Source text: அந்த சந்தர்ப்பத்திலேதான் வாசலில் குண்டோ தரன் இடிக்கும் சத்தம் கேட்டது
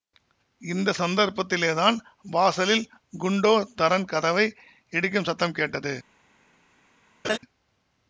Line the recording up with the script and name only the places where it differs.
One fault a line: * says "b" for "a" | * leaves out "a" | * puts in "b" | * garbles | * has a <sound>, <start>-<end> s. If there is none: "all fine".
* says "இந்த" for "அந்த"
* puts in "கதவை"
* has a laugh, 7.2-7.4 s